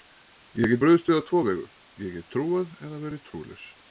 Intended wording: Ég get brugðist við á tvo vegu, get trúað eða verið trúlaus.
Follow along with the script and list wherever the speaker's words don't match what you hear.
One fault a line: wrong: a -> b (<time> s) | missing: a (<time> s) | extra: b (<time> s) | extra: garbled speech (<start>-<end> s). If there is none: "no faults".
extra: ég (2.0 s)